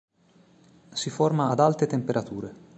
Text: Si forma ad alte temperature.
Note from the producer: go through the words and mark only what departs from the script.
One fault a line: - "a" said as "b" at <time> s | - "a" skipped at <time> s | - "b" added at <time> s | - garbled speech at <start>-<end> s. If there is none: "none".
none